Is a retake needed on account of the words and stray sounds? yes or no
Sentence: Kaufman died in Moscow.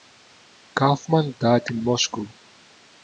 no